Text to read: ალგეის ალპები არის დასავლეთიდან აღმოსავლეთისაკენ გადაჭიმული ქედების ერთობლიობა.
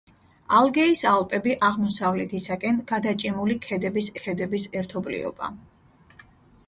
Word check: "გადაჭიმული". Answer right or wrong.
right